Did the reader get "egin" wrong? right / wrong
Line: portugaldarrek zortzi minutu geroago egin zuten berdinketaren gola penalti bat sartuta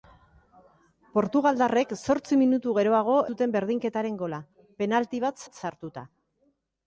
wrong